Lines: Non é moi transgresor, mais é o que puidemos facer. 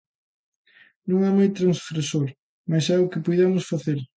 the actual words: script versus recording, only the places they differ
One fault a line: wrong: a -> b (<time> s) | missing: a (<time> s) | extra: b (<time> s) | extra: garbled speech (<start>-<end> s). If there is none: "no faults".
no faults